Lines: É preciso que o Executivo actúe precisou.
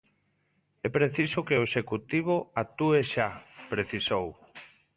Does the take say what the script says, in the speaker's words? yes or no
no